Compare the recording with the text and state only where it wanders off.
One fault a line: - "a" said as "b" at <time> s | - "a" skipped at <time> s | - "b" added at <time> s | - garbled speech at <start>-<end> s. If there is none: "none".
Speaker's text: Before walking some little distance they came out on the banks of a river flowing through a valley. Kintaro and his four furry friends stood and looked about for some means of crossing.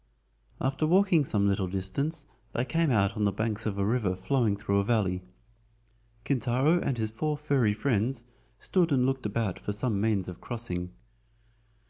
- "Before" said as "After" at 0.6 s